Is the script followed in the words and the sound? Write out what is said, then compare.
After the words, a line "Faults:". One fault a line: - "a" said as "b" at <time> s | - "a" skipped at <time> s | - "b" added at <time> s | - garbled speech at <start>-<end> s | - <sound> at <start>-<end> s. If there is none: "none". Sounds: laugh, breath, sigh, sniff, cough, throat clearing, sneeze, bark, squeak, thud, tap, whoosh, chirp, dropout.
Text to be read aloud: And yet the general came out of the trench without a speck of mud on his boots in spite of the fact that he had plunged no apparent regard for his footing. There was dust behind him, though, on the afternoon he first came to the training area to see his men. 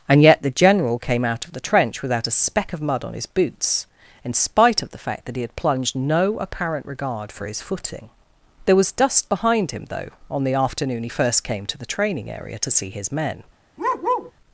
And yet the general came out of the trench without a speck of mud on his boots in spite of the fact that he had plunged no apparent regard for his footing. There was dust behind him, though, on the afternoon he first came to the training area to see his men.
Faults:
- bark at 13.8-14.3 s